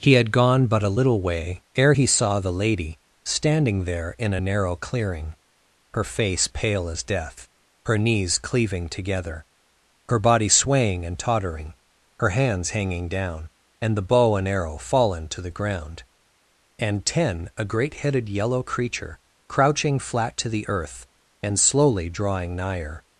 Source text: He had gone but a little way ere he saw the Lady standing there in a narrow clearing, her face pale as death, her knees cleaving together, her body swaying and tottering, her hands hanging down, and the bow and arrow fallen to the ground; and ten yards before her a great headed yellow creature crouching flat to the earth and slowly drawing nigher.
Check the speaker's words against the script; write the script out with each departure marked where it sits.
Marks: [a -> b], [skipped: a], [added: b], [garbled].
He had gone but a little way ere he saw the Lady standing there in a narrow clearing, her face pale as death, her knees cleaving together, her body swaying and tottering, her hands hanging down, and the bow and arrow fallen to the ground; and ten [skipped: yards before her] a great headed yellow creature crouching flat to the earth and slowly drawing nigher.